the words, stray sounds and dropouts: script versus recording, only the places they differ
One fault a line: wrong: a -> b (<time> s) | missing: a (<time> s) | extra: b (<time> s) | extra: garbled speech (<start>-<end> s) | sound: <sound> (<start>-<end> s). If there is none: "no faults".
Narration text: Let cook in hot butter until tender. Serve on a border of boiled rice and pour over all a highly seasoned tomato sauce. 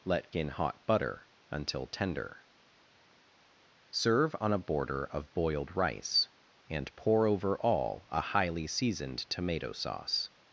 missing: cook (0.3 s)